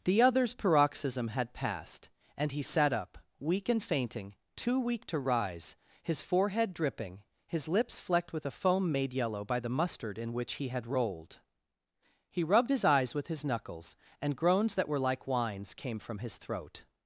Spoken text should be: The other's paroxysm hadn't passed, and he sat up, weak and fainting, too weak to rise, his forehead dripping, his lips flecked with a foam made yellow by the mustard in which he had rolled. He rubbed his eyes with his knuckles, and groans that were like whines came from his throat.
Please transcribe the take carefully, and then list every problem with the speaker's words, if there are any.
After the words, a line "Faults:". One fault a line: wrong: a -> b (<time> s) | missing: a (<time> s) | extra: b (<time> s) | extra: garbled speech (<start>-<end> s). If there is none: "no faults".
The other's paroxysm had passed, and he sat up, weak and fainting, too weak to rise, his forehead dripping, his lips flecked with a foam made yellow by the mustard in which he had rolled. He rubbed his eyes with his knuckles, and groans that were like whines came from his throat.
Faults:
wrong: hadn't -> had (1.3 s)